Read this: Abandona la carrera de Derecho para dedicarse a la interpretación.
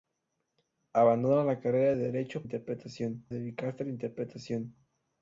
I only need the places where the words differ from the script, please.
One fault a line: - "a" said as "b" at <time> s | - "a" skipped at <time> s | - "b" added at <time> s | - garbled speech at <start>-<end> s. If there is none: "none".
- "para" said as "interpretación" at 2.4 s